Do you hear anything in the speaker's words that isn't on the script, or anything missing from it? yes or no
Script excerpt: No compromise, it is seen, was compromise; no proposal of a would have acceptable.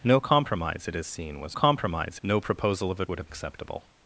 no